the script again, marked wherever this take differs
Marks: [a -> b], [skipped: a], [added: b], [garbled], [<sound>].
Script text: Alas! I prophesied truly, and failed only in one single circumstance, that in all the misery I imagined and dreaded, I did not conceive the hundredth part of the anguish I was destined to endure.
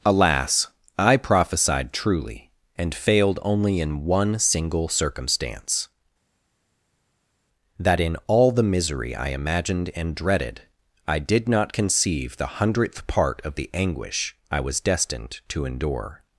Alas! I prophesied truly, and failed only in one single circumstance, that in all the misery I imagined and dreaded, I did not conceive the hundredth part of the anguish I was destined to endure.